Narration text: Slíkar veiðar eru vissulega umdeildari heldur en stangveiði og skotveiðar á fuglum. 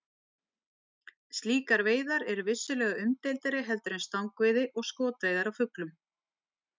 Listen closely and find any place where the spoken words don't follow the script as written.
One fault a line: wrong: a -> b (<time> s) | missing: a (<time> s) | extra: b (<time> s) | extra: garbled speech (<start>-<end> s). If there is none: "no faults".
no faults